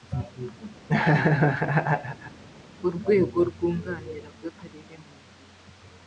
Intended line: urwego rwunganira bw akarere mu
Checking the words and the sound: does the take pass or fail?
fail